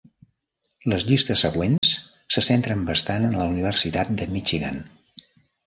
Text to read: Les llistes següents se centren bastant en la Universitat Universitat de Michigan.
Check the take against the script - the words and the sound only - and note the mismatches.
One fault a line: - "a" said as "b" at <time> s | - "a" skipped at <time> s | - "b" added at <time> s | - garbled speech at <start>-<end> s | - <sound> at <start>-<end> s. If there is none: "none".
- dropout at 1.8-1.8 s
- "Universitat" skipped at 4.2 s